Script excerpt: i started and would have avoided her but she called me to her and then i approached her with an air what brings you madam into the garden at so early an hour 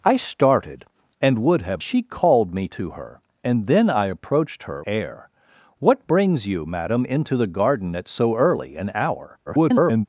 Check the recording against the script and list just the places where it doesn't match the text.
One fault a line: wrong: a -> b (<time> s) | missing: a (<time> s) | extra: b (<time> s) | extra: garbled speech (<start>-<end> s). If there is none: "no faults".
missing: avoided her but (1.8 s)
missing: with an (4.8 s)
extra: garbled speech (9.5-10.1 s)